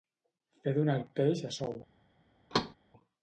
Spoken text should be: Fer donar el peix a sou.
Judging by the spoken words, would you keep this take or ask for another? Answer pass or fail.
pass